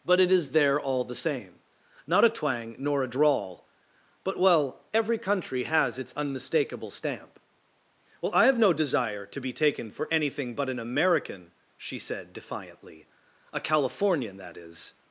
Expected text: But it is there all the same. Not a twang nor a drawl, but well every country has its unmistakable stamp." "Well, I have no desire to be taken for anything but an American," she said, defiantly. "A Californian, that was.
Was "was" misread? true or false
true